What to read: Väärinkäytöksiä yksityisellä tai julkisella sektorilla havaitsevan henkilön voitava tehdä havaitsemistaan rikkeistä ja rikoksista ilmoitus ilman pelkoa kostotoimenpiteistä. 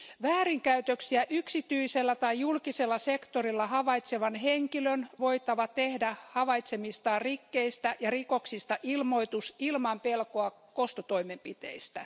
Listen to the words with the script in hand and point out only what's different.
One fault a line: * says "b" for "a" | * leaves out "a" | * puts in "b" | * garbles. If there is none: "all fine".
all fine